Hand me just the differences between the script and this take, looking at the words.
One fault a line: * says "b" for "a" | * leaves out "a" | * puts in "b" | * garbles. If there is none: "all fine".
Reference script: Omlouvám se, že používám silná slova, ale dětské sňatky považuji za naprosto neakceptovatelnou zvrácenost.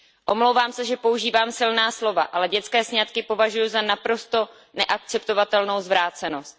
all fine